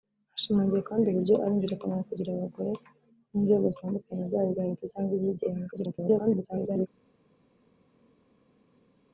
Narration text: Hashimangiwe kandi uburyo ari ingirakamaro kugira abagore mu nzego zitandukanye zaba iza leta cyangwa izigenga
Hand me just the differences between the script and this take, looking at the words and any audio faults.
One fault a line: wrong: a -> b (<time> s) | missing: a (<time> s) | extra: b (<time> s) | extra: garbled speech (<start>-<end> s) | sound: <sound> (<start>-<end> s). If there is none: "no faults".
extra: garbled speech (5.7-6.9 s)